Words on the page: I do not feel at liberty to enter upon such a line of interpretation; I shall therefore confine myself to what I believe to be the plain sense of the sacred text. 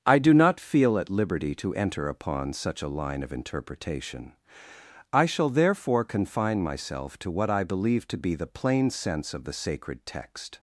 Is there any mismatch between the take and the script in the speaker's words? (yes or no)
no